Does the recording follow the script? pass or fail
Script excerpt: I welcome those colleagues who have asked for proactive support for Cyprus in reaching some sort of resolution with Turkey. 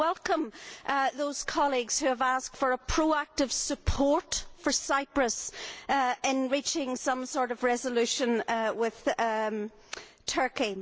pass